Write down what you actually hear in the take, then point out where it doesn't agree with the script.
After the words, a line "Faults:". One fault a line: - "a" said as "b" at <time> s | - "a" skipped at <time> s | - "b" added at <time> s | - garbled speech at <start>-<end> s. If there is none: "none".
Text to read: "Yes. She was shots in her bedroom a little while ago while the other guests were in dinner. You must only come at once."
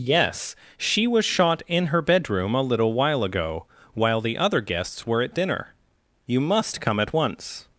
"Yes. She was shot in her bedroom a little while ago while the other guests were at dinner. You must come at once."
Faults:
- "shots" said as "shot" at 1.2 s
- "in" said as "at" at 5.2 s
- "only" skipped at 6.8 s